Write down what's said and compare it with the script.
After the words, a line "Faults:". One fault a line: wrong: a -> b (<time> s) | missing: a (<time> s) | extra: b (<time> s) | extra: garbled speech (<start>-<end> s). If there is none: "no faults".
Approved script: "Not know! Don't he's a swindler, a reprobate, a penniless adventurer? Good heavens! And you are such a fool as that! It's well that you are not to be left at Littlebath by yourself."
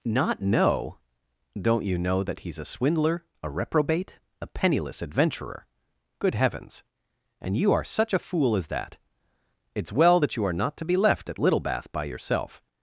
"Not know! Don't you know that he's a swindler, a reprobate, a penniless adventurer? Good heavens! And you are such a fool as that! It's well that you are not to be left at Littlebath by yourself."
Faults:
extra: you know that (1.9 s)